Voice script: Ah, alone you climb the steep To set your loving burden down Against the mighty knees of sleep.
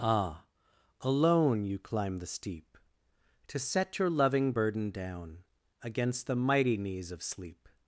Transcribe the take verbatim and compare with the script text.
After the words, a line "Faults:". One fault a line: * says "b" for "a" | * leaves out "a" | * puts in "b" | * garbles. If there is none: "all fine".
Ah, alone you climb the steep To set your loving burden down Against the mighty knees of sleep.
Faults:
all fine